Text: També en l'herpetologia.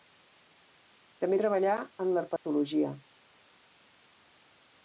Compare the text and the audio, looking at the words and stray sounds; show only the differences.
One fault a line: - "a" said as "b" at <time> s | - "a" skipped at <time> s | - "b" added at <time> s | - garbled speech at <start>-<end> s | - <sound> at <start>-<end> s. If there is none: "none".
- "treballà" added at 1.4 s
- dropout at 2.4-2.5 s